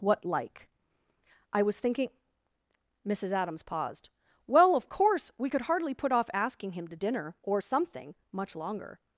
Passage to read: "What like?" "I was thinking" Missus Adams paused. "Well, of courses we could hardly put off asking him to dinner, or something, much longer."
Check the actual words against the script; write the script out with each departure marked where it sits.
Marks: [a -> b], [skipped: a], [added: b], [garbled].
"What like?" "I was thinking" Missus Adams paused. "Well, of [courses -> course] we could hardly put off asking him to dinner, or something, much longer."